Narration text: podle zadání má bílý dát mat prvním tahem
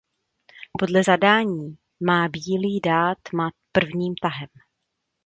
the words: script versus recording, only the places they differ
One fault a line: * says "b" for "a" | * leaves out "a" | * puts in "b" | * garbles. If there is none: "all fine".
all fine